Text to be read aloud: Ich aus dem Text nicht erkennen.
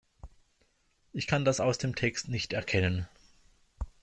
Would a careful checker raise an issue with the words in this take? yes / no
yes